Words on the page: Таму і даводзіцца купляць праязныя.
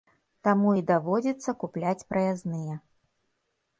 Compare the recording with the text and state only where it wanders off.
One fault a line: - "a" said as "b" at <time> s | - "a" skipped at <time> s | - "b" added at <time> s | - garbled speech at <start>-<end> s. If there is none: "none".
none